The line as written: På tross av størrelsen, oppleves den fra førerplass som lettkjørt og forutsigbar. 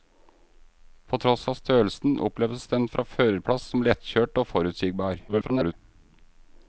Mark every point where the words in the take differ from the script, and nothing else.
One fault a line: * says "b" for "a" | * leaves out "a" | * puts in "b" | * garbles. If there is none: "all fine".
* garbles